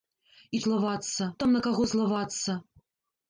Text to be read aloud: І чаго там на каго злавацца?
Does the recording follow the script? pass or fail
fail